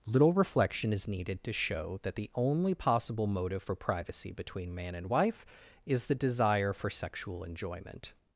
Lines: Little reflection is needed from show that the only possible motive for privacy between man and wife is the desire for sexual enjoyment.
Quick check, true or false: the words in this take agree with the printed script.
false